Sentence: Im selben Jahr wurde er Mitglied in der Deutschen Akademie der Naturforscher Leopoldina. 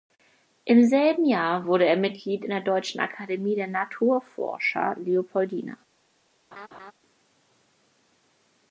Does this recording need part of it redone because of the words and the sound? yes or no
yes